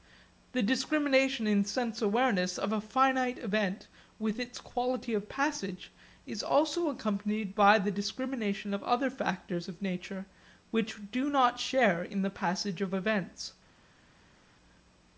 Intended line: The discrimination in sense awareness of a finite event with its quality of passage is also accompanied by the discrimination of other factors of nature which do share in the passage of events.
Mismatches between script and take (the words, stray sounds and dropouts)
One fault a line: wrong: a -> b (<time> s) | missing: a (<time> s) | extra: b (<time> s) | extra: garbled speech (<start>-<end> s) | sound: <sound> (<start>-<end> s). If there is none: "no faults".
extra: not (11.3 s)